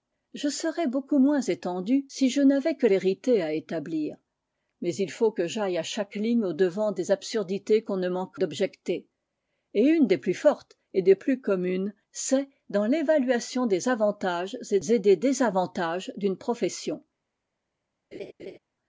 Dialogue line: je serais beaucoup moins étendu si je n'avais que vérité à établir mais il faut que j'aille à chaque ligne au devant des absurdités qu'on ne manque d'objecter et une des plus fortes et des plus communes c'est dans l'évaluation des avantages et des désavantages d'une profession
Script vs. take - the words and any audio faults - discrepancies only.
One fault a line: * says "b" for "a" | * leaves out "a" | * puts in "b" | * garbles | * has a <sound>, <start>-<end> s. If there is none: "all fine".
* has a laugh, 18.1-18.6 s